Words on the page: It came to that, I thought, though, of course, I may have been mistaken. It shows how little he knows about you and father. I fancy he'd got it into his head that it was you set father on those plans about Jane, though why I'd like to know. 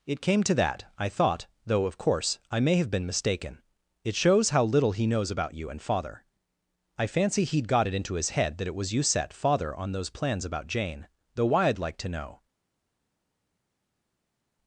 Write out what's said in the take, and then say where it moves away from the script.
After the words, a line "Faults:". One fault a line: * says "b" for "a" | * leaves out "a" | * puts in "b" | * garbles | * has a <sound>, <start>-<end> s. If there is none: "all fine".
It came to that, I thought, though, of course, I may have been mistaken. It shows how little he knows about you and father. I fancy he'd got it into his head that it was you set father on those plans about Jane, though why I'd like to know.
Faults:
all fine